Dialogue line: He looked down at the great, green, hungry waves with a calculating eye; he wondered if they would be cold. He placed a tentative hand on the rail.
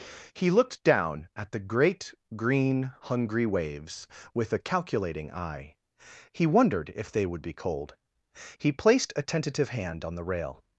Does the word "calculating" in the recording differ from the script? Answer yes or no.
no